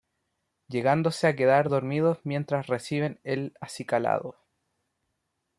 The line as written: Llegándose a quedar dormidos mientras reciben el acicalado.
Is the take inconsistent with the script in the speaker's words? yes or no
no